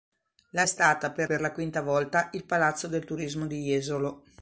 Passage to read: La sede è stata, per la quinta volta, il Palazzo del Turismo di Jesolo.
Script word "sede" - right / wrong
wrong